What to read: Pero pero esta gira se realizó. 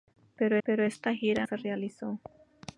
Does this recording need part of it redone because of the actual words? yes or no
no